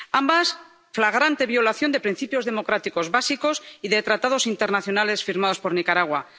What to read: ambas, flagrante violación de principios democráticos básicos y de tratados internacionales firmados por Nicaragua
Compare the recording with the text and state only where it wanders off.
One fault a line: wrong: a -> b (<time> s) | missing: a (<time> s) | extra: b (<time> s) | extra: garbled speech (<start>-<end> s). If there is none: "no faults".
no faults